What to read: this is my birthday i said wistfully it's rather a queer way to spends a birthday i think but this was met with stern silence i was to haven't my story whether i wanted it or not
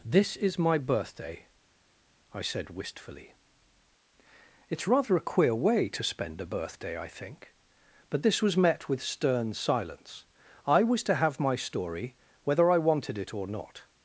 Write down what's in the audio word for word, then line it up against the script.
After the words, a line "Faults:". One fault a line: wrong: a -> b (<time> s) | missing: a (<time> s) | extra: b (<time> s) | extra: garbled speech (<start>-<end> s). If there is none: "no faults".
this is my birthday i said wistfully it's rather a queer way to spend a birthday i think but this was met with stern silence i was to have my story whether i wanted it or not
Faults:
wrong: spends -> spend (6.0 s)
wrong: haven't -> have (11.2 s)